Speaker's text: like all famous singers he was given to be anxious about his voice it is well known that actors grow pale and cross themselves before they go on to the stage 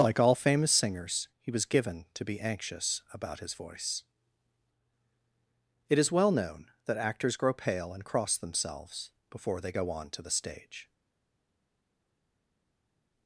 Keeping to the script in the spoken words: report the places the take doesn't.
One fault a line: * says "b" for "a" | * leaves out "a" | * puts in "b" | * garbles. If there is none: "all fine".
all fine